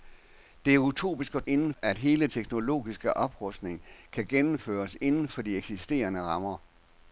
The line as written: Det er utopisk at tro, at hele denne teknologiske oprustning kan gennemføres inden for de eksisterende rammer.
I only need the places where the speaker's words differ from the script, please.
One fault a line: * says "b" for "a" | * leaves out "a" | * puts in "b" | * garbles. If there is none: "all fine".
* says "inden" for "tro"
* leaves out "denne"